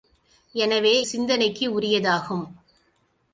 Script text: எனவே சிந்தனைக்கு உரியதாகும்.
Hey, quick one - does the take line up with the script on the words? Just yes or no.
yes